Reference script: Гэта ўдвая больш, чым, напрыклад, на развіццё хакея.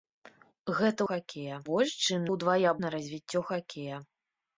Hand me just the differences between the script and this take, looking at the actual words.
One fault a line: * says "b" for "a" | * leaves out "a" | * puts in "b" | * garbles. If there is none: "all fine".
* says "хакея" for "ўдвая"
* says "ўдвая" for "напрыклад"